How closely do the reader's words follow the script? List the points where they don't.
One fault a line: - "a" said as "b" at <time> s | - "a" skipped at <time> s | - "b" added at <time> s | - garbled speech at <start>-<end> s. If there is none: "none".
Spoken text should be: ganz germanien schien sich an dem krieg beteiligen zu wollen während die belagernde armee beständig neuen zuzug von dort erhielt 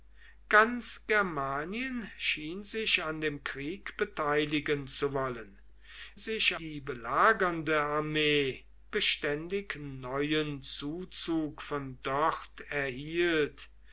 - "während" said as "sich" at 6.2 s